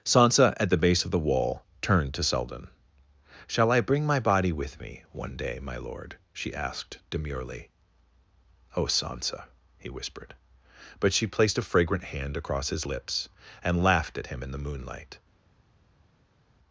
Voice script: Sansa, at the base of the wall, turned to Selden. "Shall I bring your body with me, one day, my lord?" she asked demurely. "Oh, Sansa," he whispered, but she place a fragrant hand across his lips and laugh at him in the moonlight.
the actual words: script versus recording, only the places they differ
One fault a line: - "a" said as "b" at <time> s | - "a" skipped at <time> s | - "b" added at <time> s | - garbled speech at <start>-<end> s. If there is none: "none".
- "your" said as "my" at 4.0 s
- "place" said as "placed" at 11.3 s
- "laugh" said as "laughed" at 13.8 s